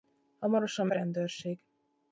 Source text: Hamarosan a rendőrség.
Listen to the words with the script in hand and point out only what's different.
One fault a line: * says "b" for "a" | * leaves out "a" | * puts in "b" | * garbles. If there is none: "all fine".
all fine